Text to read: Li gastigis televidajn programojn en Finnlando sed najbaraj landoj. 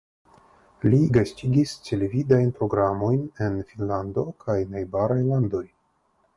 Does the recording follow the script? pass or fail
fail